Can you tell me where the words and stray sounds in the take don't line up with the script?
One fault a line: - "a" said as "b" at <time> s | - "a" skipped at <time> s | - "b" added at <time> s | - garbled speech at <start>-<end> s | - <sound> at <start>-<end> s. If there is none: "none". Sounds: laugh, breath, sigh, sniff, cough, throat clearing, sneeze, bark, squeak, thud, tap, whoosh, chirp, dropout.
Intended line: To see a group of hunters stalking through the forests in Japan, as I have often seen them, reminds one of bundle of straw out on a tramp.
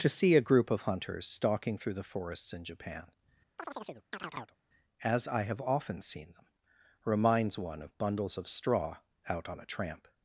- chirp at 3.6-4.6 s
- "bundle" said as "bundles" at 8.0 s